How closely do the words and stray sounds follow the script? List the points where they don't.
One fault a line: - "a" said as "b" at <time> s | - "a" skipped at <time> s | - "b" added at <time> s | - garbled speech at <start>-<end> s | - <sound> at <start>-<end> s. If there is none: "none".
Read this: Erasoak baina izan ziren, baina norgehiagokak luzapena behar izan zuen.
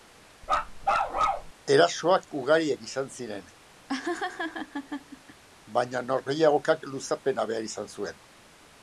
- bark at 0.4-1.5 s
- "baina" said as "ugariak" at 2.4 s
- laugh at 3.9-5.4 s